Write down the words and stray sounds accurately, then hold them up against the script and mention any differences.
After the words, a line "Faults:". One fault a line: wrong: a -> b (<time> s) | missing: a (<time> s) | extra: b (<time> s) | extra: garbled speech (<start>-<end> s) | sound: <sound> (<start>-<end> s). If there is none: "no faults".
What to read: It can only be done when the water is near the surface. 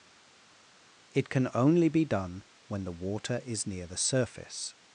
It can only be done when the water is near the surface.
Faults:
no faults